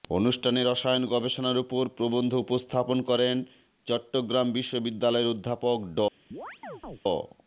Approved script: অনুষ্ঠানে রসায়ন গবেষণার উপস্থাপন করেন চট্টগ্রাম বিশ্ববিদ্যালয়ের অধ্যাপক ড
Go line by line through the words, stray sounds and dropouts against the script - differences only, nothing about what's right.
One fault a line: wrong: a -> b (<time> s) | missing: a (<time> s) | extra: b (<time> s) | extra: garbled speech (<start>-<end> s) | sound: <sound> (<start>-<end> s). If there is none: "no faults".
extra: ওপর প্রবন্ধ (1.6 s)
sound: chirp (6.3-7.0 s)